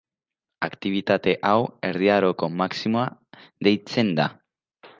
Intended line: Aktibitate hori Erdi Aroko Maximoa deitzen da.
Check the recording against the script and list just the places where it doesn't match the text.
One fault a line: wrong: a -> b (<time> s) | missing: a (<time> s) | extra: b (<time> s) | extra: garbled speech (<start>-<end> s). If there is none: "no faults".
wrong: hori -> hau (1.5 s)